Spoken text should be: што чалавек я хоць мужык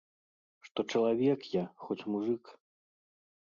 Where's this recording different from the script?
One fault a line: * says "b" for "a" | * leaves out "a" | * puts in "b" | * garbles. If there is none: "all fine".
all fine